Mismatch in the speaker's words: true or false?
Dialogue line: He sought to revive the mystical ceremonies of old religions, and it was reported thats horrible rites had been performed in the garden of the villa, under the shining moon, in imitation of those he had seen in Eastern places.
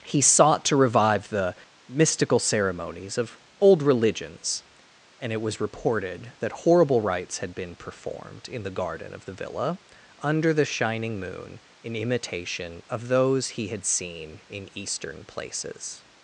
true